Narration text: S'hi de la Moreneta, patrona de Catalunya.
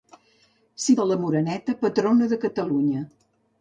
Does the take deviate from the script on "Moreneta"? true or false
false